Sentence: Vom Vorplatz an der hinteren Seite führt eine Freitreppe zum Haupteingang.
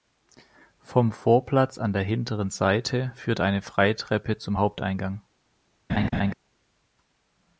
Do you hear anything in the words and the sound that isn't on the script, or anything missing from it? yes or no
yes